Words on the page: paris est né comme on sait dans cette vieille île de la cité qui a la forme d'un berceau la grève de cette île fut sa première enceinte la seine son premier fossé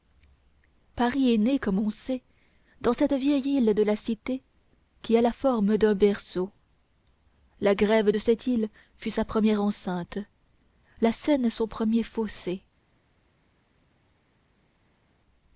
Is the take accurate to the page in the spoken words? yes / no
yes